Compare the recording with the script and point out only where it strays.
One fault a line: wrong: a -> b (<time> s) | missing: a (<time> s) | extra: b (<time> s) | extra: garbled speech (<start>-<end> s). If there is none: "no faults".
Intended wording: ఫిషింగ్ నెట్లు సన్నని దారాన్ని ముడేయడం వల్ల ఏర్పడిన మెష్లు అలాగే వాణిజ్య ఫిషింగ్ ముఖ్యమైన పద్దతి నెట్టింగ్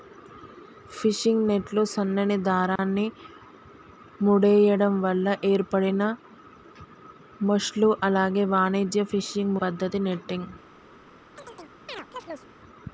missing: ముఖ్యమైన (9.6 s)